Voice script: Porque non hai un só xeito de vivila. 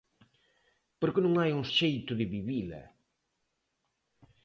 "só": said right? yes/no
no